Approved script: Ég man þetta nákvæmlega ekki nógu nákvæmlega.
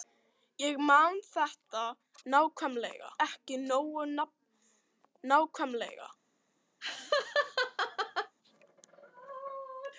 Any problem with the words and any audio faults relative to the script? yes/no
yes